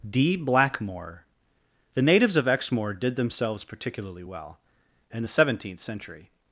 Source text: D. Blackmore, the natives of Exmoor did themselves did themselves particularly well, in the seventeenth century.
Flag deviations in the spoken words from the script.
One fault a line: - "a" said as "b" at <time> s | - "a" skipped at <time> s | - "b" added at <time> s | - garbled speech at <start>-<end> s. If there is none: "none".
- "did themselves" skipped at 3.6 s